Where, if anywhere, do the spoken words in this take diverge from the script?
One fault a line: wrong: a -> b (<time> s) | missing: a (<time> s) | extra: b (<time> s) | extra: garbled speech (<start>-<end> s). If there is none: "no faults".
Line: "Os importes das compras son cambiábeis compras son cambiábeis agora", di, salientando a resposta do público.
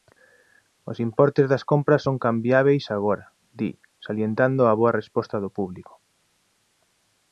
missing: compras son cambiábeis (2.8 s)
extra: boa (4.8 s)